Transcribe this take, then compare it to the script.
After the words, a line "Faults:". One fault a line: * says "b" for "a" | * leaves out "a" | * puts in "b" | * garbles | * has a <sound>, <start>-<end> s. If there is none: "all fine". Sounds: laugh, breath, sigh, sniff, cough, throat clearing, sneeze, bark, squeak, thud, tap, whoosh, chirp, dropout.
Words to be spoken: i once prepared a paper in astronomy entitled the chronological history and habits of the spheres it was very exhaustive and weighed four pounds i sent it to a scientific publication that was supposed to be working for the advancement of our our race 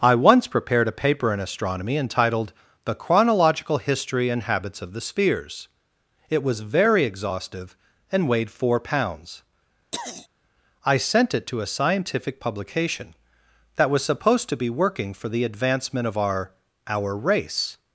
i once prepared a paper in astronomy entitled the chronological history and habits of the spheres it was very exhaustive and weighed four pounds i sent it to a scientific publication that was supposed to be working for the advancement of our our race
Faults:
* has a throat clearing, 9.9-10.3 s